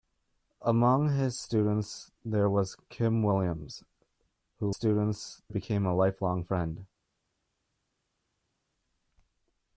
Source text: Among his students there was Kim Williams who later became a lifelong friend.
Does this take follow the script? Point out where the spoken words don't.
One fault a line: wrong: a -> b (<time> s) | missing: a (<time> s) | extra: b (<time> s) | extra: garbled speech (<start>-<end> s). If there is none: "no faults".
wrong: later -> students (4.7 s)